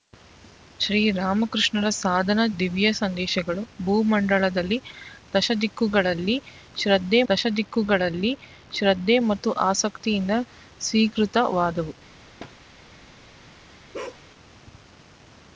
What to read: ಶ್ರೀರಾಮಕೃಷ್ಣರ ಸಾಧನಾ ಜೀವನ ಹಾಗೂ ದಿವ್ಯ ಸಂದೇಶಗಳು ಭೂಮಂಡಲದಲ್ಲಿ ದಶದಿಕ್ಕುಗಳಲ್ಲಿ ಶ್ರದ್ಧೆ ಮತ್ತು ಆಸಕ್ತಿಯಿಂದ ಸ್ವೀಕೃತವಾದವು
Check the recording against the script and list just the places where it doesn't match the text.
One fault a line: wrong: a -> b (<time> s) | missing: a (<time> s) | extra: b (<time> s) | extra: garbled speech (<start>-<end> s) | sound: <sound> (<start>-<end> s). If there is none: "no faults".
missing: ಜೀವನ ಹಾಗೂ (2.5 s)
extra: ದಶದಿಕ್ಕುಗಳಲ್ಲಿ ಶ್ರದ್ಧೆ (7.3 s)
sound: thud (12.4-12.6 s)
sound: bark (13.9-14.2 s)